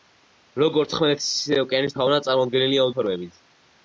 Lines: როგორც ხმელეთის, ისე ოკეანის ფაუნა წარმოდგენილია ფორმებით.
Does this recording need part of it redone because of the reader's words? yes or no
no